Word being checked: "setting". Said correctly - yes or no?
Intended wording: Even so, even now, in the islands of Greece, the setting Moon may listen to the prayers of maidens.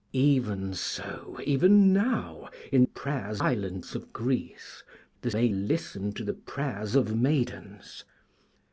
no